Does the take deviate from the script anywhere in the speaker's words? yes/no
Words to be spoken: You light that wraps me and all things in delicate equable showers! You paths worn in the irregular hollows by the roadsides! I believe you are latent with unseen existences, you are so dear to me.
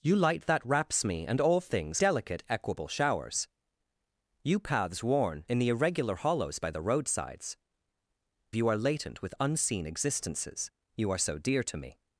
yes